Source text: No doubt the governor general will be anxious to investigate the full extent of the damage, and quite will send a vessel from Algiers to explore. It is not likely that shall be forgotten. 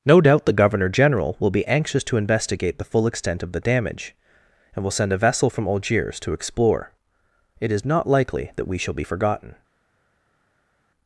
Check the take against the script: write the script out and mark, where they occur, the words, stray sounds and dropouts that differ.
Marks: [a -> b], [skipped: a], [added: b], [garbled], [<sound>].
No doubt the governor general will be anxious to investigate the full extent of the damage, and [skipped: quite] will send a vessel from Algiers to explore. It is not likely that [added: we] shall be forgotten.